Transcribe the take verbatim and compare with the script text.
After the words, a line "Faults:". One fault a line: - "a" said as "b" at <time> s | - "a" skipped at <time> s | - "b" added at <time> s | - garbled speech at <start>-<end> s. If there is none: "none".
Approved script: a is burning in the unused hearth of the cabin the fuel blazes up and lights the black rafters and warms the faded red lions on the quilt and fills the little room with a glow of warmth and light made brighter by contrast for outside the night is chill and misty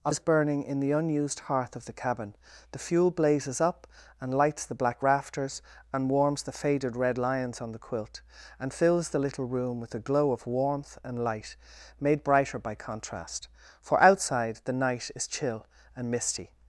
a is burning in the unused hearth of the cabin the fuel blazes up and lights the black rafters and warms the faded red lions on the quilt and fills the little room with a glow of warmth and light made brighter by contrast for outside the night is chill and misty
Faults:
none